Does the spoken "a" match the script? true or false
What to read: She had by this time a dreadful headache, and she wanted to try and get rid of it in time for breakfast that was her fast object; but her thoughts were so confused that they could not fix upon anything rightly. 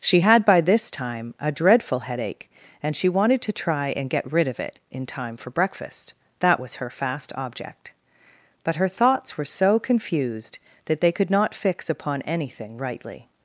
true